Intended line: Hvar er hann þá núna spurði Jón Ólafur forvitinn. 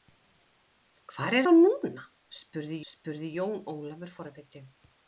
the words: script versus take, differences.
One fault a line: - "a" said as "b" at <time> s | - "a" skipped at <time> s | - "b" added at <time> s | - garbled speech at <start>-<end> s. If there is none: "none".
- "hann" skipped at 1.4 s
- "spurði" added at 2.9 s